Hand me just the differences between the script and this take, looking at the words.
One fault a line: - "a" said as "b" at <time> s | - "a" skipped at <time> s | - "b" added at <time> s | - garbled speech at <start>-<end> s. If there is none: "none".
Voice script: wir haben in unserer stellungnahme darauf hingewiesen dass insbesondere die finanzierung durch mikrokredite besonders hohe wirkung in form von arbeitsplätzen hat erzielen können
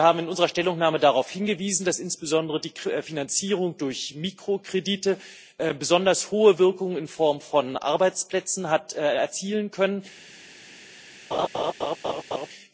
none